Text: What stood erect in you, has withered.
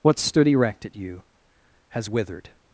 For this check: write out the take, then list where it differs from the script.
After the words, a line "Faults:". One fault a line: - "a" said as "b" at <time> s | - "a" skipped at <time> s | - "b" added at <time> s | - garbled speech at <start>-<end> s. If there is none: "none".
What stood erect at you, has withered.
Faults:
- "in" said as "at" at 0.8 s